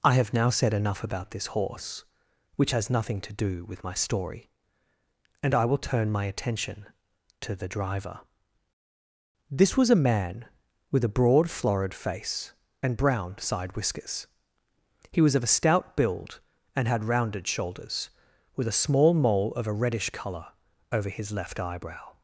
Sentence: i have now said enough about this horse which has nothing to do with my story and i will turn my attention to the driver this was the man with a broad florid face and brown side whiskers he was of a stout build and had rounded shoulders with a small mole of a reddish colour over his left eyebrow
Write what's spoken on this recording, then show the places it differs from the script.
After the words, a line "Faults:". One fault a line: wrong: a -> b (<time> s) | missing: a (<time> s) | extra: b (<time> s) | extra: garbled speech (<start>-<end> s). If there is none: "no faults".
i have now said enough about this horse which has nothing to do with my story and i will turn my attention to the driver this was a man with a broad florid face and brown side whiskers he was of a stout build and had rounded shoulders with a small mole of a reddish colour over his left eyebrow
Faults:
wrong: the -> a (9.9 s)